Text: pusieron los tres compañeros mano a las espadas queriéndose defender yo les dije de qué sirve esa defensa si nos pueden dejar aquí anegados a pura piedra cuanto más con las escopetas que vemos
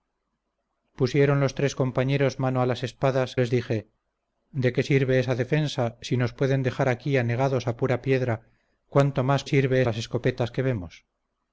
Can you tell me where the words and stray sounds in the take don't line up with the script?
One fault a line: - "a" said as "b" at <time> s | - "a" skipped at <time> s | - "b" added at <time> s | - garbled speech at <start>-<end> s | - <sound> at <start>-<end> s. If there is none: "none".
- "queriéndose defender yo" skipped at 3.4 s
- "con" said as "sirve" at 9.4 s